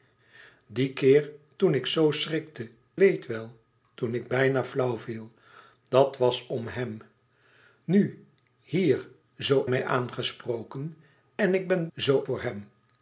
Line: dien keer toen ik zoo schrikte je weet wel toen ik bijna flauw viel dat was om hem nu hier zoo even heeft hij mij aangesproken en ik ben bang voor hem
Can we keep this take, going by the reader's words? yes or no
no